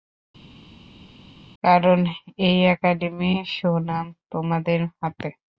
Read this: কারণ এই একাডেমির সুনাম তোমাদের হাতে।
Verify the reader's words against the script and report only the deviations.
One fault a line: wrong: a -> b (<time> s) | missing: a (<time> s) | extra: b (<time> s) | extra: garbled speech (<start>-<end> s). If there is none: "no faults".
no faults